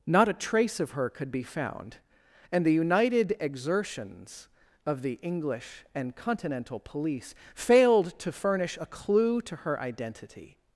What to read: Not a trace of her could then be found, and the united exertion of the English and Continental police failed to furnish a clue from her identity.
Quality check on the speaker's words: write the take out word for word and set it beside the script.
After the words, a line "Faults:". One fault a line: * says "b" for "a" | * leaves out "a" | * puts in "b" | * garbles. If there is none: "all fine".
Not a trace of her could be found, and the united exertions of the English and Continental police failed to furnish a clue to her identity.
Faults:
* leaves out "then"
* says "exertions" for "exertion"
* says "to" for "from"